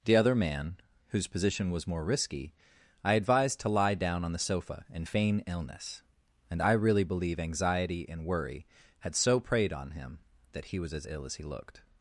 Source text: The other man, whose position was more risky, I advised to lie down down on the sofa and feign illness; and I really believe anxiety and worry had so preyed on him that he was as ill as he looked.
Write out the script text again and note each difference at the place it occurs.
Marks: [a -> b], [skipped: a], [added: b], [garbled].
The other man, whose position was more risky, I advised to lie down [skipped: down] on the sofa and feign illness; and I really believe anxiety and worry had so preyed on him that he was as ill as he looked.